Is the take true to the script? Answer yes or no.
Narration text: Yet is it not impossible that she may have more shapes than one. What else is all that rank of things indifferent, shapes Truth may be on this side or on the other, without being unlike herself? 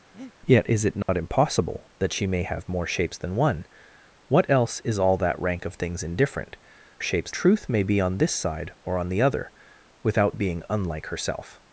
yes